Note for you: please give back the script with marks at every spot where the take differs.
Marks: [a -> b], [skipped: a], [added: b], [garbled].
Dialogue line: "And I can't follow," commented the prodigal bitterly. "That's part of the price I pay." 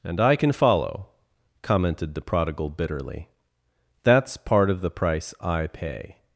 "And I [can't -> can] follow," commented the prodigal bitterly. "That's part of the price I pay."